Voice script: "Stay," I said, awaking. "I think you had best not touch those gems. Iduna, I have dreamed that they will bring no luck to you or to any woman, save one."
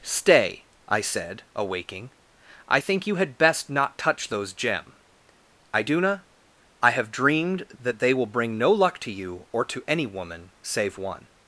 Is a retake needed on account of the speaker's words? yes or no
yes